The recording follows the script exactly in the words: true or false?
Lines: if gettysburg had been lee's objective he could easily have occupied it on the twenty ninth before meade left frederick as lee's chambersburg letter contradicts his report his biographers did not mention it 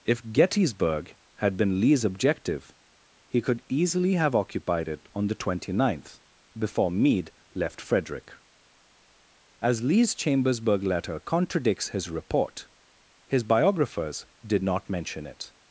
true